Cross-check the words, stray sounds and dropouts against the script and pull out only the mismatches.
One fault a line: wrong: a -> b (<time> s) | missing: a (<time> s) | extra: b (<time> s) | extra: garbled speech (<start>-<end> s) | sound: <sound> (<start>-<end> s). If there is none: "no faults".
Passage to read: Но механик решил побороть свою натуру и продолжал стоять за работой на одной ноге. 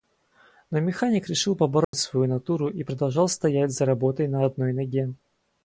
sound: dropout (1.8-1.9 s)